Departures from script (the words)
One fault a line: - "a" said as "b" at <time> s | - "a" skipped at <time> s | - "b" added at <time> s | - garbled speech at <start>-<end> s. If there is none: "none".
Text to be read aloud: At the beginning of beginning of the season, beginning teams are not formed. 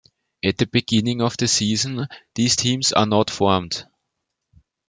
- "beginning of" skipped at 1.4 s
- "beginning" said as "these" at 2.3 s